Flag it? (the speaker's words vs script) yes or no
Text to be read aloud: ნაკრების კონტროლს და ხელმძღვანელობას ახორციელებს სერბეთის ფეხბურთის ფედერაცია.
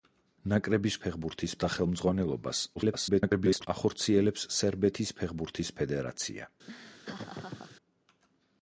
yes